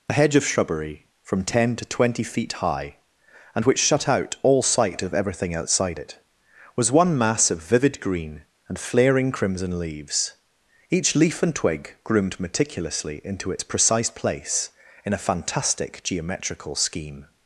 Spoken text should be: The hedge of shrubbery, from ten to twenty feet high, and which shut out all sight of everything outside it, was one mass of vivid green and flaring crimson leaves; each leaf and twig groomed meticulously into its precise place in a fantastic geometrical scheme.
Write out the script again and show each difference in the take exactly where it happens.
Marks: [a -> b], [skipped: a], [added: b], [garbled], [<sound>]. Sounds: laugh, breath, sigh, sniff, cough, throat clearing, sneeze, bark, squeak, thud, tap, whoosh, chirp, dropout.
[The -> A] hedge of shrubbery, from ten to twenty feet high, and which shut out all sight of everything outside it, was one mass of vivid green and flaring crimson leaves; each leaf and twig groomed meticulously into its precise place in a fantastic geometrical scheme.